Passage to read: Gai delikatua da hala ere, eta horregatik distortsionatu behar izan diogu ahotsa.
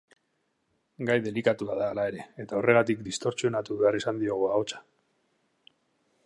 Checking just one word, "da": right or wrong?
right